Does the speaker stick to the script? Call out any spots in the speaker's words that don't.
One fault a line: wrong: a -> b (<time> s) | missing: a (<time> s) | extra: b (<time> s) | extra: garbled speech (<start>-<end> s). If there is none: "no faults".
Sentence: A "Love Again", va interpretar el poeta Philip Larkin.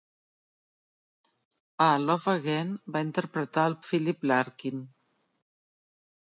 missing: poeta (3.8 s)